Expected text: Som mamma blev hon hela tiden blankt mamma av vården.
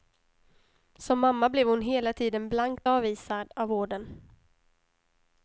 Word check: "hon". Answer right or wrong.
right